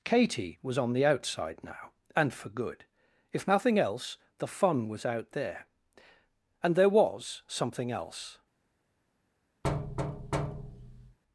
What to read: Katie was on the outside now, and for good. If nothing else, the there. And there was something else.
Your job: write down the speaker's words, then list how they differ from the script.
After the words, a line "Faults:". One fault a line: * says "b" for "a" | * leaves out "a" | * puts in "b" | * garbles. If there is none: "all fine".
Katie was on the outside now, and for good. If nothing else, the fun was out there. And there was something else.
Faults:
* puts in "fun was out"